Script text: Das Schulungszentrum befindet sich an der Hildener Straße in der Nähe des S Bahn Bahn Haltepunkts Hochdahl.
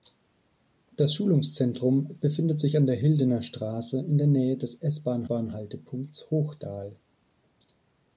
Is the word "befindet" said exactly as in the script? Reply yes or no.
yes